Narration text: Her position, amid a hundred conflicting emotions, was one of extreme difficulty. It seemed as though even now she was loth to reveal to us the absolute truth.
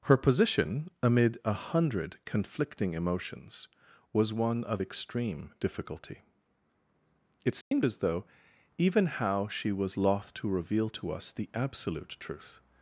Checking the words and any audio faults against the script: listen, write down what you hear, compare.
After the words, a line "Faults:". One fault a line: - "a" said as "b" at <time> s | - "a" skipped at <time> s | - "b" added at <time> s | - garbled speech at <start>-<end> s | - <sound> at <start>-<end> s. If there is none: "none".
Her position, amid a hundred conflicting emotions, was one of extreme difficulty. It seemed as though even how she was loth to reveal to us the absolute truth.
Faults:
- dropout at 7.6-7.7 s
- "now" said as "how" at 9.0 s